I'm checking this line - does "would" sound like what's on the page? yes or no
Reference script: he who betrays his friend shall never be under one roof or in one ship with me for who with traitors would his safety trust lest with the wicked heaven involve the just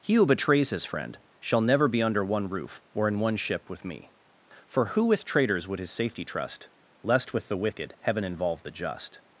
yes